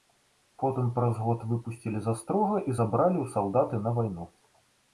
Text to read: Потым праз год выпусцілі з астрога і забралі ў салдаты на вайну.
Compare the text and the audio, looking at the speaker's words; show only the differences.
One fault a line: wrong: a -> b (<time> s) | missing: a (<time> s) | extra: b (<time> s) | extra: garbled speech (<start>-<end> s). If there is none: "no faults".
no faults